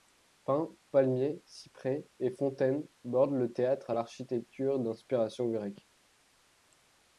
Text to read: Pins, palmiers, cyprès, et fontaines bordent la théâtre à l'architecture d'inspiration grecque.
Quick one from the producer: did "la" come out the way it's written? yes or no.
no